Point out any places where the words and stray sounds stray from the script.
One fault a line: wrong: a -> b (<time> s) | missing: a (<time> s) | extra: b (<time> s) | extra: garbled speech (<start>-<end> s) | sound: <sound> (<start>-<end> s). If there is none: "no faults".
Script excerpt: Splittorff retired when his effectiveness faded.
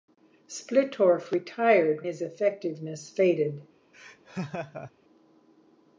missing: when (2.1 s)
sound: laugh (3.9-4.9 s)